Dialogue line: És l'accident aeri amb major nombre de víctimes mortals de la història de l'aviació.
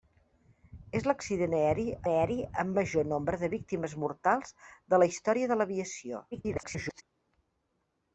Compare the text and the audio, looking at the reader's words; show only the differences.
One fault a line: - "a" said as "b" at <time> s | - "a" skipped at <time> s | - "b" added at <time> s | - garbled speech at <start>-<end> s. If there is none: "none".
- "aeri" added at 2.1 s
- garbled speech at 6.3-7.0 s